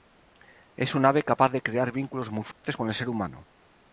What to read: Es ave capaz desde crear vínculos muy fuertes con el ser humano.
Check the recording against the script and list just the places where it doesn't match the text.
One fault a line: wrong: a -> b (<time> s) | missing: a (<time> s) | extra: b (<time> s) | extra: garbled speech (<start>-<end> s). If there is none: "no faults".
extra: un (0.9 s)
wrong: desde -> de (1.5 s)